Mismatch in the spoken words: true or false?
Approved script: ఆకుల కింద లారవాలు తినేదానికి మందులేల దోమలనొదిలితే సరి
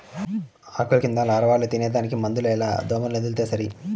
false